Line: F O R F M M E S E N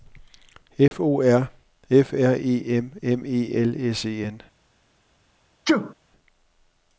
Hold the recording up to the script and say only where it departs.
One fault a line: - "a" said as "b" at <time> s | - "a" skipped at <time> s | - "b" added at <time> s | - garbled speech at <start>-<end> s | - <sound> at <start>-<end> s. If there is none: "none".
- dropout at 0.9-0.9 s
- "R E" added at 2.1 s
- "L" added at 3.5 s
- sneeze at 5.7-5.9 s